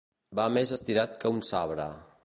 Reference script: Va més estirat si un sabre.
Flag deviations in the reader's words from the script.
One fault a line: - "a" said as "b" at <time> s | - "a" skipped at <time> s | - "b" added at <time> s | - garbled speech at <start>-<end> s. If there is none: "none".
- "si" said as "que" at 1.2 s